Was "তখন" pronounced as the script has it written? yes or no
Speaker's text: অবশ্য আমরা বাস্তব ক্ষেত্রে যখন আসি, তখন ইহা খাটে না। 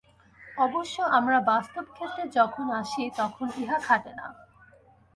yes